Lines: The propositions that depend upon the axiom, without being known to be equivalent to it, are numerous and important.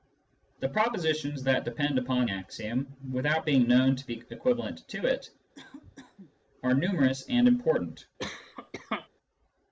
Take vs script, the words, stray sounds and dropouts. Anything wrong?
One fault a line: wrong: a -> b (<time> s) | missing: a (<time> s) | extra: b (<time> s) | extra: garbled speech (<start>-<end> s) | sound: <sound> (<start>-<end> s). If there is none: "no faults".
missing: the (2.3 s)
sound: cough (5.5-6.3 s)
sound: cough (8.2-9.1 s)